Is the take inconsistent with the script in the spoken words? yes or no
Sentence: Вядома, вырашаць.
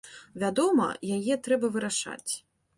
yes